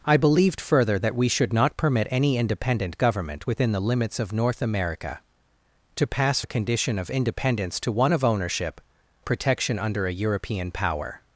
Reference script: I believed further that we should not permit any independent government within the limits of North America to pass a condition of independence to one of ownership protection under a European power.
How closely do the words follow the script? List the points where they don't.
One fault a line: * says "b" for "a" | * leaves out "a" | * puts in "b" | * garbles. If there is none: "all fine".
all fine